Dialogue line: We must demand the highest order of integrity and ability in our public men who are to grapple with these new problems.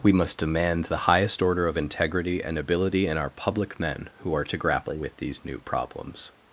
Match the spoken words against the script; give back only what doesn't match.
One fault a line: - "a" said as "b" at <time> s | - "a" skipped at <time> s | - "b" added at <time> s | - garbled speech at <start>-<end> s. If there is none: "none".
none